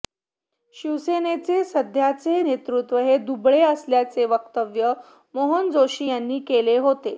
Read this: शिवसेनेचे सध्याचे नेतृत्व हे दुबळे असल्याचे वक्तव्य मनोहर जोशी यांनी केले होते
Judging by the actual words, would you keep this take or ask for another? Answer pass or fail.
pass